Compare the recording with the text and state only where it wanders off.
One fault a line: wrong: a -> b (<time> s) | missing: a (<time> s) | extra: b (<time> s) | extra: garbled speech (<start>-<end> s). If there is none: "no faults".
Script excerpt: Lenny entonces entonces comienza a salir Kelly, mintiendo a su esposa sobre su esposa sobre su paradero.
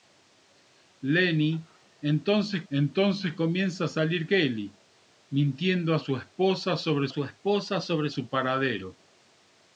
no faults